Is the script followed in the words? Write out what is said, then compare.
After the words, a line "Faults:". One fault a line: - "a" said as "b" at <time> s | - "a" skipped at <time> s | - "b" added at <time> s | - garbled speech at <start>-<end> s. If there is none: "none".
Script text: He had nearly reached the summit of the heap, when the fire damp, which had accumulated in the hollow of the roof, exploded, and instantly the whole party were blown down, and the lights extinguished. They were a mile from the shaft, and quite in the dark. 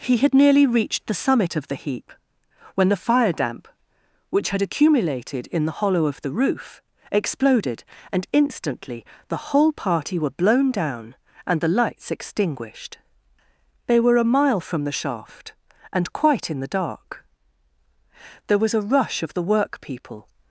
He had nearly reached the summit of the heap, when the fire damp, which had accumulated in the hollow of the roof, exploded, and instantly the whole party were blown down, and the lights extinguished. They were a mile from the shaft, and quite in the dark. There was a rush of the workpeople
Faults:
- "There was a rush of the workpeople" added at 18.5 s